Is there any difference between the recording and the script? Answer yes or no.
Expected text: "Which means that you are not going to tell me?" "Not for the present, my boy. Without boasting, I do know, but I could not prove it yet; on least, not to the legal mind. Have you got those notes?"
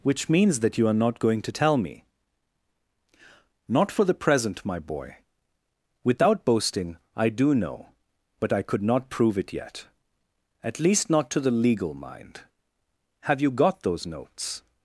yes